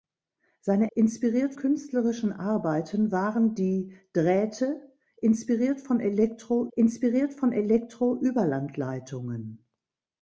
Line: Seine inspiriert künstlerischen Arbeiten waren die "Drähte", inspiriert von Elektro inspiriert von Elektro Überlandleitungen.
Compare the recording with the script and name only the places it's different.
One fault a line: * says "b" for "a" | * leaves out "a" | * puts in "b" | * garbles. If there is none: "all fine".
all fine